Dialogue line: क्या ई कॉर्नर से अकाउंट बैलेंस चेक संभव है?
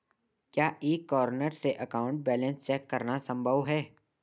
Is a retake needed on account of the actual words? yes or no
yes